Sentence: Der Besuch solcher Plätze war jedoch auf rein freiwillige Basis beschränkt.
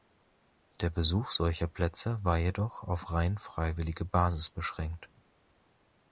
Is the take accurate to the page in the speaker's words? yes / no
yes